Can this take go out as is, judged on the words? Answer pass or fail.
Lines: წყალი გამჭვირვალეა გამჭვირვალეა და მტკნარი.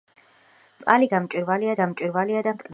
pass